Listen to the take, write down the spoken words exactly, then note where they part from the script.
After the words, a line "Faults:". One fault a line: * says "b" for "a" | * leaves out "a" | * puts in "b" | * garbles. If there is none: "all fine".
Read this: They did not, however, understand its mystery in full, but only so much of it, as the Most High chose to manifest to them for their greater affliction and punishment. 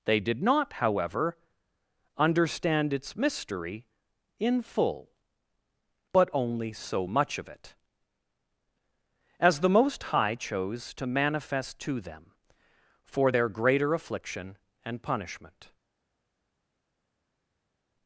They did not, however, understand its mystery in full, but only so much of it, as the Most High chose to manifest to them for their greater affliction and punishment.
Faults:
all fine